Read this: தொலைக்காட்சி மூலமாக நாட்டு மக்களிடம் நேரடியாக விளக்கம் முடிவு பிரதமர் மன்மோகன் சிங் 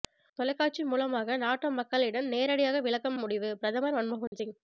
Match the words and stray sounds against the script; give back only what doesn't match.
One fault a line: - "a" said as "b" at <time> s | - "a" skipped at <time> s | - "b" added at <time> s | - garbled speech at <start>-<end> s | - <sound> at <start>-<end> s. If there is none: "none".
- dropout at 4.3-4.3 s